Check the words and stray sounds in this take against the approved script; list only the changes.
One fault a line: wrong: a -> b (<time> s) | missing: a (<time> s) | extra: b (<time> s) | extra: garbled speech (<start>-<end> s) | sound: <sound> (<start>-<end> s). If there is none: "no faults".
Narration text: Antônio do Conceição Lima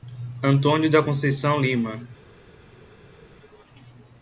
wrong: do -> da (0.9 s)